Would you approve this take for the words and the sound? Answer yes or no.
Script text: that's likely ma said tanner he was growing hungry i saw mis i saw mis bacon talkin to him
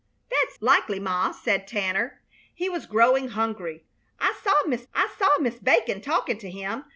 yes